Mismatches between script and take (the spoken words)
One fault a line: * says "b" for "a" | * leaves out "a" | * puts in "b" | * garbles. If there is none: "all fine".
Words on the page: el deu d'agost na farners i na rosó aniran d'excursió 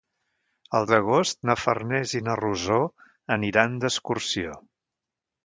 * leaves out "deu"